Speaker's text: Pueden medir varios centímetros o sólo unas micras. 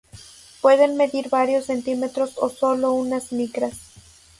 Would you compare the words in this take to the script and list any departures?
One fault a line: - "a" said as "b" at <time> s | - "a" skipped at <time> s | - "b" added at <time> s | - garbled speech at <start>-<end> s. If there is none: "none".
none